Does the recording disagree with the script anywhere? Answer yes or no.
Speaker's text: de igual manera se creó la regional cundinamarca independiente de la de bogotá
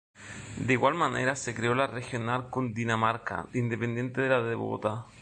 no